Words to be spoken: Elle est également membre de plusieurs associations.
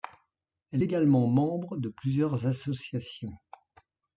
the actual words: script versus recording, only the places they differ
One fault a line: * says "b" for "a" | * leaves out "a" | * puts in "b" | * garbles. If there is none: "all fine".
* leaves out "est"